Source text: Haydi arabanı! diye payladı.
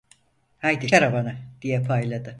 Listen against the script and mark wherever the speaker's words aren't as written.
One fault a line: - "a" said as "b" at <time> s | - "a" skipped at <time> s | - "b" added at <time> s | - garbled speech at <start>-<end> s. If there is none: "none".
none